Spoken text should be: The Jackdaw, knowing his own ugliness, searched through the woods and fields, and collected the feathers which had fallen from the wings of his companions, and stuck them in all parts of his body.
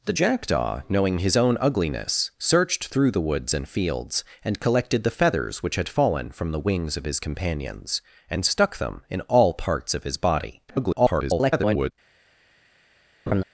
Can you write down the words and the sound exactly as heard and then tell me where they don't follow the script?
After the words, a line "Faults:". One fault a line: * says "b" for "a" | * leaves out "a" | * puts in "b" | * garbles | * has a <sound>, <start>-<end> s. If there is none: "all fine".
The Jackdaw, knowing his own ugliness, searched through the woods and fields, and collected the feathers which had fallen from the wings of his companions, and stuck them in all parts of his body. [garbled]
Faults:
* garbles
* has a laugh, 13.3-13.4 s